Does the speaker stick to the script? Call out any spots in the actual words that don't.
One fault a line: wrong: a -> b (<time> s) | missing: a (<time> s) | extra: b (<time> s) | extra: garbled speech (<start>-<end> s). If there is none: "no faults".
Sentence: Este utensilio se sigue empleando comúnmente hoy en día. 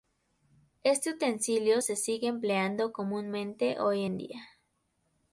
no faults